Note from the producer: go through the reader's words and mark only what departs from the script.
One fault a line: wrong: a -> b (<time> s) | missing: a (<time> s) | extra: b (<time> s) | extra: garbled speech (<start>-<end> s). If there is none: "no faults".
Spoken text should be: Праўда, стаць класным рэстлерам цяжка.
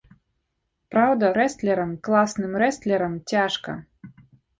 wrong: стаць -> рэстлерам (1.4 s)